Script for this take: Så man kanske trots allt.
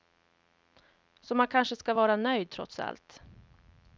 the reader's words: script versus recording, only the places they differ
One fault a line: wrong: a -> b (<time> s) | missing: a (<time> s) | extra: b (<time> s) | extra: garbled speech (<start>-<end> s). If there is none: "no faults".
extra: ska vara nöjd (1.8 s)